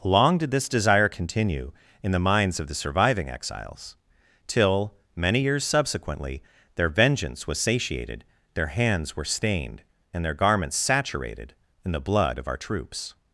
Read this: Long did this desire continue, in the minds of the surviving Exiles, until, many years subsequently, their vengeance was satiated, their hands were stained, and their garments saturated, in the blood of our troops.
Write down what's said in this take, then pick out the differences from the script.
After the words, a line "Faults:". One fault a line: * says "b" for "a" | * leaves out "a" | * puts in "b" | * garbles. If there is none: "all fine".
Long did this desire continue, in the minds of the surviving Exiles, till, many years subsequently, their vengeance was satiated, their hands were stained, and their garments saturated, in the blood of our troops.
Faults:
* says "till" for "until"